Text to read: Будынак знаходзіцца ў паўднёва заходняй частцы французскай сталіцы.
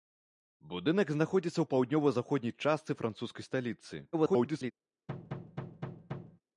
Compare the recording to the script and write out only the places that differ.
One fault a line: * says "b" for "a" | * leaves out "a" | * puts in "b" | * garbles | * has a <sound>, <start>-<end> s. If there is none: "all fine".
* garbles
* has a thud, 5.1-6.4 s